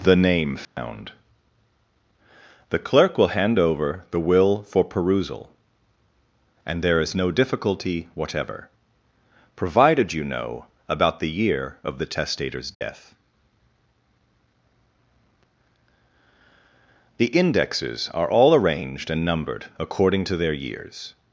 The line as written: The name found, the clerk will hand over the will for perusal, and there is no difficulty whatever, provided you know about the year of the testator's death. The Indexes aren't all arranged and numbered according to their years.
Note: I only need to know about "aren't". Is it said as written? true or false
false